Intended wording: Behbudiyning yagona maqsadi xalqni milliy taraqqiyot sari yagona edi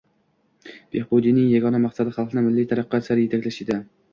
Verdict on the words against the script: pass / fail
fail